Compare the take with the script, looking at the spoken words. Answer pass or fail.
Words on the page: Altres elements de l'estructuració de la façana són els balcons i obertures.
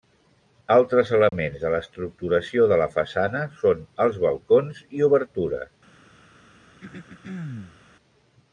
pass